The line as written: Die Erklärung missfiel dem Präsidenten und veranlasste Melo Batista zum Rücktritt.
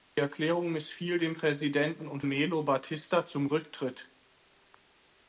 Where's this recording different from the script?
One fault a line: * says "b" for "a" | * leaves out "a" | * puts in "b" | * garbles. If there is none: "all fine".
* leaves out "veranlasste"